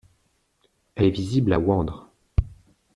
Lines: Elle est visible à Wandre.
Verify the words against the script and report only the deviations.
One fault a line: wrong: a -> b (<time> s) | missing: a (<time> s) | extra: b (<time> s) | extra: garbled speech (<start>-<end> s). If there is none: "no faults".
no faults